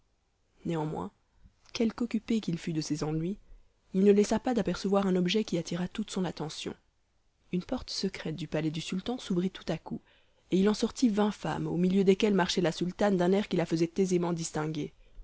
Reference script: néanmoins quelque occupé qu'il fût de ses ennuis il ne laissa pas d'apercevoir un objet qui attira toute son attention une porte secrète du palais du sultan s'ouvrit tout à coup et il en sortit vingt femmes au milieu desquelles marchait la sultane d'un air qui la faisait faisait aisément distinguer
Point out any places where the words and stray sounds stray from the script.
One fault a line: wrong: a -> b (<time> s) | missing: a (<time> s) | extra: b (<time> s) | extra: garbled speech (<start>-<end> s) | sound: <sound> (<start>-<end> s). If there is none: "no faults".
missing: faisait (13.9 s)